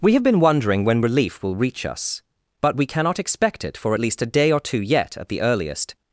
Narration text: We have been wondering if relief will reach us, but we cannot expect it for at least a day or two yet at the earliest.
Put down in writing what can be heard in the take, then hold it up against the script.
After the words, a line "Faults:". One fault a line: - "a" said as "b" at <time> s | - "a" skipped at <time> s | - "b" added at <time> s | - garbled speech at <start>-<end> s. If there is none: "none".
We have been wondering when relief will reach us, but we cannot expect it for at least a day or two yet at the earliest.
Faults:
- "if" said as "when" at 0.8 s